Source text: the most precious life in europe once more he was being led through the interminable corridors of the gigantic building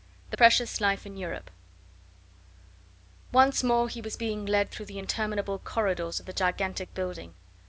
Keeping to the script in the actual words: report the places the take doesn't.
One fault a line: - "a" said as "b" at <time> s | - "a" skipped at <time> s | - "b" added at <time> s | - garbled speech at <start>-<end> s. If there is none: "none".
- "most" skipped at 0.4 s